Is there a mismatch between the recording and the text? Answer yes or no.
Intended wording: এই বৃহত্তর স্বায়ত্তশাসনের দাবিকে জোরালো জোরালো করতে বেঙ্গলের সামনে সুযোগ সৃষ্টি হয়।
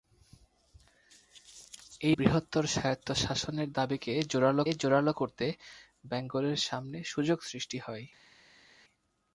no